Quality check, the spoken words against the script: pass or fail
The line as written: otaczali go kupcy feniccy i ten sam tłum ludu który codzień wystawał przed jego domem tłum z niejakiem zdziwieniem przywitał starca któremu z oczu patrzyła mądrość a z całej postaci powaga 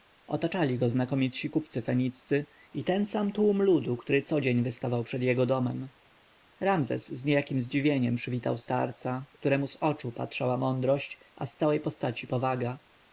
fail